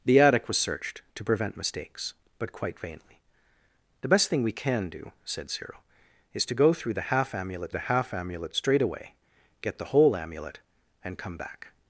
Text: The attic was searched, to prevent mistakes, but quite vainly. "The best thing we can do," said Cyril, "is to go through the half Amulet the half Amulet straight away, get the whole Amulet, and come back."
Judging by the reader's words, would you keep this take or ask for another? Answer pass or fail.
pass